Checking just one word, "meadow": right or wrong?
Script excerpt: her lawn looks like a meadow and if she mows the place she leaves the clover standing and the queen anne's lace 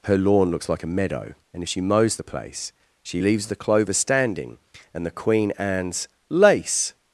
right